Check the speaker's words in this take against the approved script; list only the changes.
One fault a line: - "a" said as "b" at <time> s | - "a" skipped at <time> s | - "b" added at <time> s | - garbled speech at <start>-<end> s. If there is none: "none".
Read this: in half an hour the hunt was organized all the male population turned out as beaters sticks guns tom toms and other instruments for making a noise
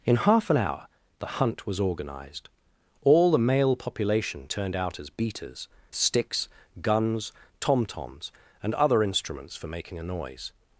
none